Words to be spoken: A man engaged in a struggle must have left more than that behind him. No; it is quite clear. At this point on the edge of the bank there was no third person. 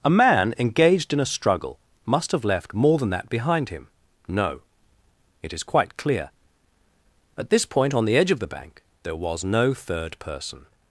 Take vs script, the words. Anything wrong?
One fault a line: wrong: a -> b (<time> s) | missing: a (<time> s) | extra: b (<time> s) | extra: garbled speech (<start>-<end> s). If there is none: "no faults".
no faults